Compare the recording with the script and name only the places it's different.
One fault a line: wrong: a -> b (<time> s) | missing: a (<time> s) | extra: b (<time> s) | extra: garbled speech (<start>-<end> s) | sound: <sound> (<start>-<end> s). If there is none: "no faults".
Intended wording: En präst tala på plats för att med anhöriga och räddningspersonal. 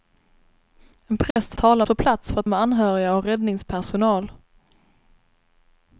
sound: dropout (1.3-1.4 s)